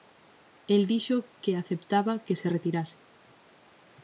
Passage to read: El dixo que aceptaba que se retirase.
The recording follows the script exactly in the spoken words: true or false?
true